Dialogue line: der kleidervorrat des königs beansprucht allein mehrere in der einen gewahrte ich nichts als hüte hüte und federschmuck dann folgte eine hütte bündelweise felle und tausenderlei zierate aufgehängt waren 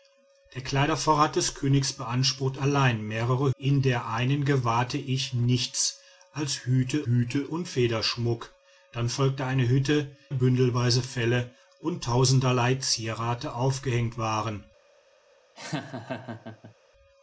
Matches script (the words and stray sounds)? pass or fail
fail